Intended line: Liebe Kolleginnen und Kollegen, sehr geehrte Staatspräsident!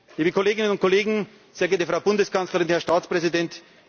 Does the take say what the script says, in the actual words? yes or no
no